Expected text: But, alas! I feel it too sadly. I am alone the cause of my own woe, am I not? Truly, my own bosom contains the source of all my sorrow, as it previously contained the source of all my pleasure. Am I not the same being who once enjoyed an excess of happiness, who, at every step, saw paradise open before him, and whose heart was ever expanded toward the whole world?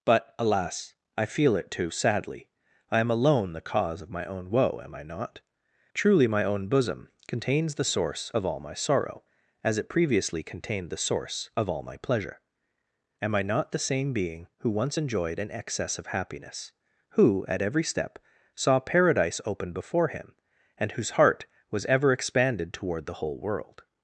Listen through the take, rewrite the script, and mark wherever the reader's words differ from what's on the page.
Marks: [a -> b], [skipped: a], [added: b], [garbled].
But, alas! I feel it too sadly. I am alone the cause of my own woe, am I not? Truly, my own bosom contains the source of all my sorrow, as it previously contained the source of all my pleasure. Am I not the same being who once enjoyed an excess of happiness, who, at every step, saw paradise open before him, and whose heart was ever expanded toward the whole world?